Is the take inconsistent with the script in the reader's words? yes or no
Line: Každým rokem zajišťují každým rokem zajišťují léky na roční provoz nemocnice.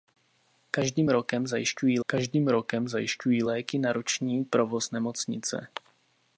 no